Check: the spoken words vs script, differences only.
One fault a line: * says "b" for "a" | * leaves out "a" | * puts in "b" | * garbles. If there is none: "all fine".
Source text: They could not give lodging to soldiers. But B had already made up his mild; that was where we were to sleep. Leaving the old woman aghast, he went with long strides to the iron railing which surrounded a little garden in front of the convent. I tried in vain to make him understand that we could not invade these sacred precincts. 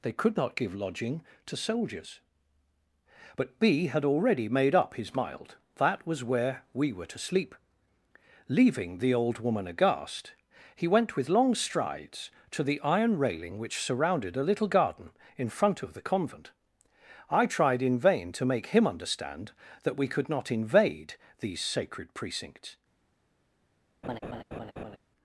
all fine